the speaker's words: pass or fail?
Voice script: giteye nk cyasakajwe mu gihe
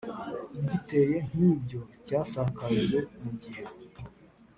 fail